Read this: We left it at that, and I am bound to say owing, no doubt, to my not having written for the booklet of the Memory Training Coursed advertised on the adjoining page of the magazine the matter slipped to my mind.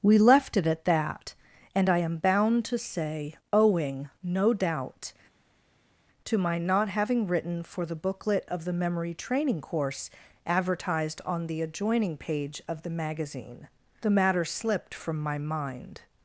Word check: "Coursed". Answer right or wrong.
wrong